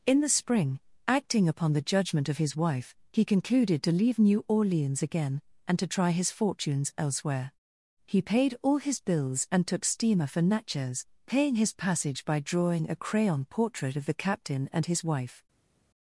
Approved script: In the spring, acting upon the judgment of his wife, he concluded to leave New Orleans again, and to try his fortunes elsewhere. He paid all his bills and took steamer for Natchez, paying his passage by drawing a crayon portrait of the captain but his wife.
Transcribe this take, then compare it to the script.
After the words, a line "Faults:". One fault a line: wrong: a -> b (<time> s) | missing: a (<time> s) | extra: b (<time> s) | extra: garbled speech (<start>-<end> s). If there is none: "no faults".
In the spring, acting upon the judgment of his wife, he concluded to leave New Orleans again, and to try his fortunes elsewhere. He paid all his bills and took steamer for Natchez, paying his passage by drawing a crayon portrait of the captain and his wife.
Faults:
wrong: but -> and (14.7 s)